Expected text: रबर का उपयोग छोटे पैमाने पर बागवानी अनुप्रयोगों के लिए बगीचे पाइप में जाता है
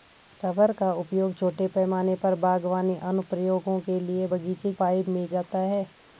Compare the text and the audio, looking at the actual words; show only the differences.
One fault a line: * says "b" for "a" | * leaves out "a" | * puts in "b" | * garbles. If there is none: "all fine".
all fine